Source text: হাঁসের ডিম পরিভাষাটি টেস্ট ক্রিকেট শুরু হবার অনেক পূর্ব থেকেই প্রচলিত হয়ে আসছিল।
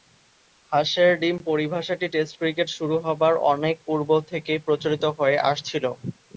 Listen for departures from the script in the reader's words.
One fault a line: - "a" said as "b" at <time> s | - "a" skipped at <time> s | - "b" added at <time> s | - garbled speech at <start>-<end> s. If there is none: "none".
none